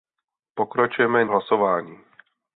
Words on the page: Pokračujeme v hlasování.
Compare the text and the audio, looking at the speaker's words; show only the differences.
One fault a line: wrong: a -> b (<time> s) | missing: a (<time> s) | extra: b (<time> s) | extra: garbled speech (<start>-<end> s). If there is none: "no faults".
no faults